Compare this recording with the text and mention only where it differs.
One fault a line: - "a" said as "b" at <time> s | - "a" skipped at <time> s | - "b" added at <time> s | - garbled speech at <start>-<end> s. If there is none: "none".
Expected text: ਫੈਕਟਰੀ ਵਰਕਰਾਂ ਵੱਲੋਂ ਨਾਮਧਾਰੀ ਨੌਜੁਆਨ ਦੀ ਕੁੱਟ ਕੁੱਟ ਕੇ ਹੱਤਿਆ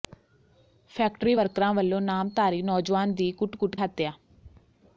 - "ਕੇ" skipped at 3.7 s